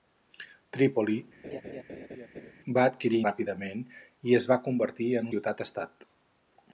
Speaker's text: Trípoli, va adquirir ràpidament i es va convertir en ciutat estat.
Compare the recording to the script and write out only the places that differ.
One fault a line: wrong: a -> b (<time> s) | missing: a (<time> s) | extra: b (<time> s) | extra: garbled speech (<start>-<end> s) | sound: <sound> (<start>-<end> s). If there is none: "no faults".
sound: laugh (1.4-2.5 s)